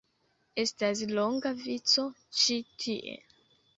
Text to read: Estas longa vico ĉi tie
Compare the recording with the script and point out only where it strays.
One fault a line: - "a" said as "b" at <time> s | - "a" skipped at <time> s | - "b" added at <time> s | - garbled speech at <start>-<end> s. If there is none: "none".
none